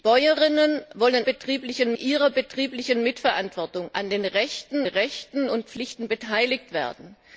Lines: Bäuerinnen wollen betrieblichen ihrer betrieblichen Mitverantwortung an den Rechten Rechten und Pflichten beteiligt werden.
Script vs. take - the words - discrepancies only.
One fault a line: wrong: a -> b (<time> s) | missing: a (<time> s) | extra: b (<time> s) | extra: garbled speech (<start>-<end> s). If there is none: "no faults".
no faults